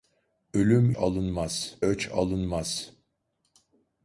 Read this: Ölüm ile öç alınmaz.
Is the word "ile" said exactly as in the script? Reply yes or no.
no